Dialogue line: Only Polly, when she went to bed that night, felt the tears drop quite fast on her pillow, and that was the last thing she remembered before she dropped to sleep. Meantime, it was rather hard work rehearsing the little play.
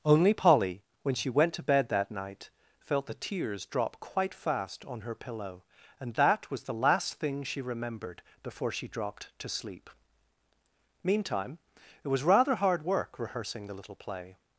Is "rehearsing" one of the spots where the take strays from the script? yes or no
no